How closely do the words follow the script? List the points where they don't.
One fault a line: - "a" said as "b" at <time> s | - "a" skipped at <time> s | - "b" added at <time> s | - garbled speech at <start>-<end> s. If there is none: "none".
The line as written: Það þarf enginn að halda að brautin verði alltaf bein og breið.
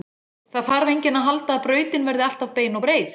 none